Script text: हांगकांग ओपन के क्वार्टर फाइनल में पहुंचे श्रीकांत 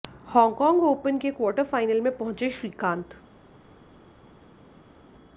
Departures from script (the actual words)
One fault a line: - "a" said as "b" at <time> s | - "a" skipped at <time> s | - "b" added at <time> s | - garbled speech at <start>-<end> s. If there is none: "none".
none